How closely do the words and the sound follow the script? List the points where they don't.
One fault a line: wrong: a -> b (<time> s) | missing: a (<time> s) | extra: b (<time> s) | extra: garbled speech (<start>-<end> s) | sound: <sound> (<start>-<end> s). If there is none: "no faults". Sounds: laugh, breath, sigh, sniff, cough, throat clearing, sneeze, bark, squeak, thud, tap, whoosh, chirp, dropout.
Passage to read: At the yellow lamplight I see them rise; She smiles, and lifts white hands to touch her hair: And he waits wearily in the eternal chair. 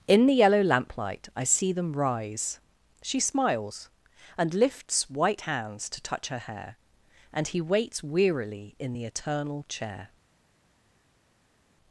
wrong: At -> In (0.1 s)